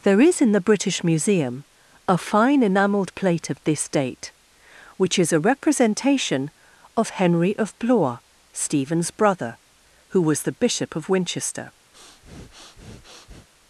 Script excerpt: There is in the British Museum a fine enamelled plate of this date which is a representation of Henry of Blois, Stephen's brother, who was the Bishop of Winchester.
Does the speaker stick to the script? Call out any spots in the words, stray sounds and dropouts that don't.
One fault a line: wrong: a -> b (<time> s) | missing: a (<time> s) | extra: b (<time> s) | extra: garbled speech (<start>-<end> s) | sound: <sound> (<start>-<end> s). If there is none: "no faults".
sound: breath (11.9-13.5 s)